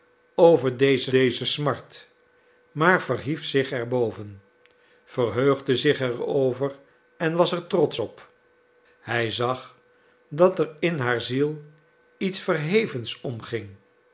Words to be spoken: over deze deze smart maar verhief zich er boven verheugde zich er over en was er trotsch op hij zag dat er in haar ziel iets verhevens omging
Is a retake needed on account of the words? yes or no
no